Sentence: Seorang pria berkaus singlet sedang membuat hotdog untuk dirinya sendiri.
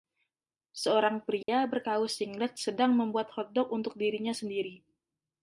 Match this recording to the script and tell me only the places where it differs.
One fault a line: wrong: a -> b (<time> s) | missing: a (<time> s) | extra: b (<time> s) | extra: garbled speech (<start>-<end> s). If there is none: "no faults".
no faults